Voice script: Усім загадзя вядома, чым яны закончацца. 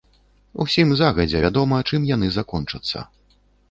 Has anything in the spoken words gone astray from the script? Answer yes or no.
no